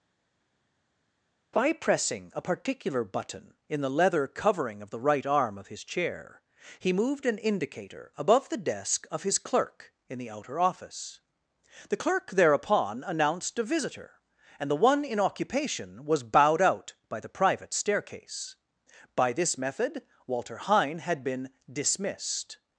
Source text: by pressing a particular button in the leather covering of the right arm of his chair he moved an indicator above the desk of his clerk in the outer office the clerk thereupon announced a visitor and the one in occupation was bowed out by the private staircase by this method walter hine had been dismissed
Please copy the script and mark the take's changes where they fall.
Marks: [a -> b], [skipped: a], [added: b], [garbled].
by pressing a particular button in the leather covering of the right arm of his chair he moved an indicator above the desk of his clerk in the outer office the clerk thereupon announced a visitor and the one in occupation was bowed out by the private staircase by this method walter hine had been dismissed